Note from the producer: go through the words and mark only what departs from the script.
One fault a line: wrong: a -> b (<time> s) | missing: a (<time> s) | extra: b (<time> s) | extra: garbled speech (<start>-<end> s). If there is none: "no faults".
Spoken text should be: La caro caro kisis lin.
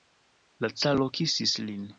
missing: caro (1.1 s)